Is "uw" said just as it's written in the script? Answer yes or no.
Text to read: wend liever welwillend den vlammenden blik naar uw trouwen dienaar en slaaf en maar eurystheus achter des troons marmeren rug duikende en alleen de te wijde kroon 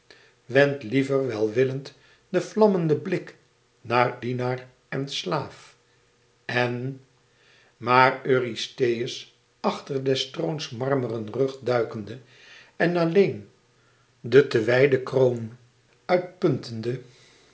no